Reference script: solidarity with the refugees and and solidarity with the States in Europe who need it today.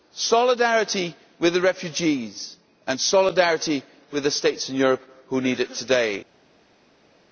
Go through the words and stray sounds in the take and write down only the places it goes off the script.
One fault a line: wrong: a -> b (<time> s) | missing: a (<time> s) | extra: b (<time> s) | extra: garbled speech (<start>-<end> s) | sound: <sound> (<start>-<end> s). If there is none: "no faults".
missing: and (3.0 s)